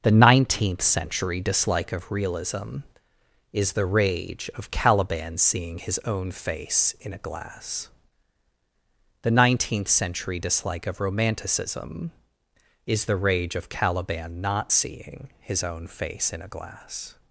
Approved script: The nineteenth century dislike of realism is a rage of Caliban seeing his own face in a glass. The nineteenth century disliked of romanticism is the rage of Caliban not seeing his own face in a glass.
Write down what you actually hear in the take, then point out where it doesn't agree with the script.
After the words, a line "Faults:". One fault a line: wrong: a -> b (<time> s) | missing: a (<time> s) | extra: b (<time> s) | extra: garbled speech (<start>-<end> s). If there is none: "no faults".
The nineteenth century dislike of realism is the rage of Caliban seeing his own face in a glass. The nineteenth century dislike of romanticism is the rage of Caliban not seeing his own face in a glass.
Faults:
wrong: a -> the (3.7 s)
wrong: disliked -> dislike (10.4 s)